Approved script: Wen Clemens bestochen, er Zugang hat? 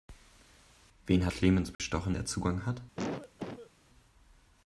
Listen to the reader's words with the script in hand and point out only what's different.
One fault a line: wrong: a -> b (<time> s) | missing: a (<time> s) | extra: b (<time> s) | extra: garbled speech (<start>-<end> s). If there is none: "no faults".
no faults